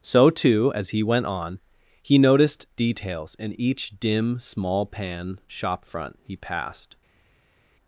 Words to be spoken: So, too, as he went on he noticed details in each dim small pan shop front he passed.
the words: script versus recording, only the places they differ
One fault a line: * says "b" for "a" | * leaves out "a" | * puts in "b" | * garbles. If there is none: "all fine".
all fine